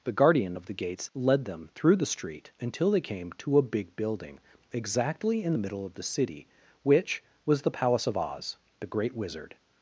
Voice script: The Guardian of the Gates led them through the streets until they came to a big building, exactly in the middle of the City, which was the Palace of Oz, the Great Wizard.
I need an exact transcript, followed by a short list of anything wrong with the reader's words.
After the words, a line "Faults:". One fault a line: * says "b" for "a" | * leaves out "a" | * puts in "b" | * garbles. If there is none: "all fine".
The Guardian of the Gates led them through the street until they came to a big building, exactly in the middle of the City, which was the Palace of Oz, the Great Wizard.
Faults:
* says "street" for "streets"